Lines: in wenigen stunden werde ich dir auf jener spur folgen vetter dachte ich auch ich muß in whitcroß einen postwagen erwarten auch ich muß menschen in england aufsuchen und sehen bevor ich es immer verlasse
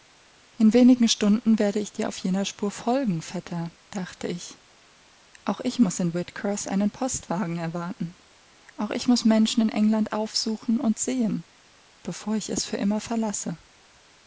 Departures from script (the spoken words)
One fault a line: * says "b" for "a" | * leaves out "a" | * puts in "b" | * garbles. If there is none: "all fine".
* puts in "für"